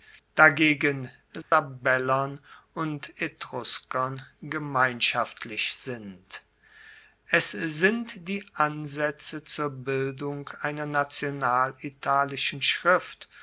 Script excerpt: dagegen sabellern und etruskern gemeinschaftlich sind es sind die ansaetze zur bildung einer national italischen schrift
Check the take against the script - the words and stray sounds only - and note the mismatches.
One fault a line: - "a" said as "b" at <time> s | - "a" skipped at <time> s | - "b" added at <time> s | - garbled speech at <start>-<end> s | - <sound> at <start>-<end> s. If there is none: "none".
- dropout at 1.4-1.5 s